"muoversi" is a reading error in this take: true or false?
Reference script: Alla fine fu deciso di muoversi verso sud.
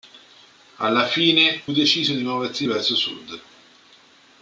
false